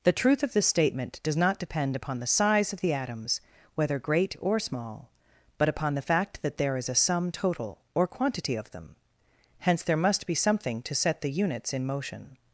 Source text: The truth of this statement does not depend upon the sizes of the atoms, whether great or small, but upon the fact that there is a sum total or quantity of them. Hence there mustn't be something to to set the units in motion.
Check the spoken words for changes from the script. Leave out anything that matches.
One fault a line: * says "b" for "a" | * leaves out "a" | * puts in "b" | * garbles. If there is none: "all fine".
* says "size" for "sizes"
* says "must" for "mustn't"
* leaves out "to"